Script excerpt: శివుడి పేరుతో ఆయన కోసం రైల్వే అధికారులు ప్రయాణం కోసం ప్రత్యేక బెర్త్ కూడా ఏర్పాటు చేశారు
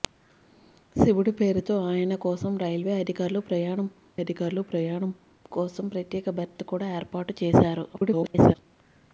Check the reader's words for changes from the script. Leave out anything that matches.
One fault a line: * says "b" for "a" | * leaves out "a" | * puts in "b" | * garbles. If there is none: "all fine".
* puts in "అధికారులు ప్రయాణం"
* garbles